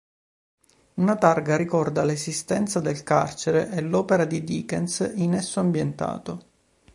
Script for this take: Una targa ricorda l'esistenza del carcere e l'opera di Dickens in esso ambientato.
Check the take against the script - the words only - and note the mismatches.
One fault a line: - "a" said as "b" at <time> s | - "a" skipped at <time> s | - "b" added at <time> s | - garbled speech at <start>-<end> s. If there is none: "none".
none